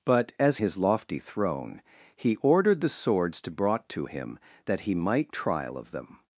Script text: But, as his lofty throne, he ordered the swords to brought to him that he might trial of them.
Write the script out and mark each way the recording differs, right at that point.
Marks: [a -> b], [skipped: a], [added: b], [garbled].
But, as his lofty throne, he ordered the swords to brought to him that he might trial of them.